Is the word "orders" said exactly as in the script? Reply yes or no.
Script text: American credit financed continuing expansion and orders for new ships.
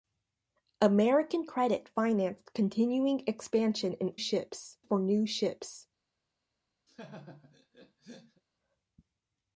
no